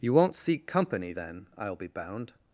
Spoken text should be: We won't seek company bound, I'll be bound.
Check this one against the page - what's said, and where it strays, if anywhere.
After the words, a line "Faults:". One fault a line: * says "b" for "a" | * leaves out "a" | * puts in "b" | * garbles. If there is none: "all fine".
You won't seek company then, I'll be bound.
Faults:
* says "You" for "We"
* says "then" for "bound"